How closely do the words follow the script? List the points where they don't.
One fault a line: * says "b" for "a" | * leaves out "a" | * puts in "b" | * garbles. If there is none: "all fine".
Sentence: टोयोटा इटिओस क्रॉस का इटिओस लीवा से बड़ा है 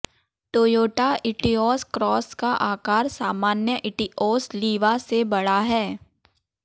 * puts in "आकार सामान्य"